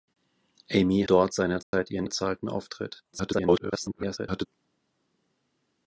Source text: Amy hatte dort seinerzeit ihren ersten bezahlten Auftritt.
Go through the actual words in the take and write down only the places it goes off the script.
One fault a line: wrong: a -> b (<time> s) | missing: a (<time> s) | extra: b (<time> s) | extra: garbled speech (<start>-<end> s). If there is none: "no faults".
missing: hatte (1.0 s)
missing: ersten (2.1 s)
extra: garbled speech (3.1-4.5 s)